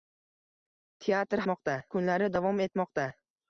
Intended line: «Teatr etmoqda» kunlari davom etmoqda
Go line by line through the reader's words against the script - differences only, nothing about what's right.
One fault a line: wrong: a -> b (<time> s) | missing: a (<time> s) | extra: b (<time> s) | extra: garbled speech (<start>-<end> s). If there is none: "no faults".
no faults